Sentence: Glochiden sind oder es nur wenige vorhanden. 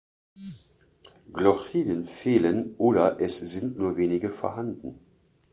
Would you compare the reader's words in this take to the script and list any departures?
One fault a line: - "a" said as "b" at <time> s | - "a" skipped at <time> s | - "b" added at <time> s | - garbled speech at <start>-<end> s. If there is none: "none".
- "sind" said as "fehlen" at 2.0 s
- "sind" added at 3.3 s